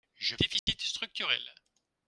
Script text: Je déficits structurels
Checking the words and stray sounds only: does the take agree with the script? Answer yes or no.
no